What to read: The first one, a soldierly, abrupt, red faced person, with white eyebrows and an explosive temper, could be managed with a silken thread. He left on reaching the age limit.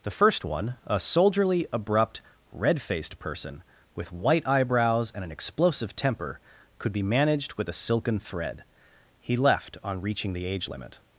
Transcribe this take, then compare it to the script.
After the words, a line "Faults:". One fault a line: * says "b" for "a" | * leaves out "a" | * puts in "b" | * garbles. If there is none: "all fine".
The first one, a soldierly, abrupt, red faced person, with white eyebrows and an explosive temper, could be managed with a silken thread. He left on reaching the age limit.
Faults:
all fine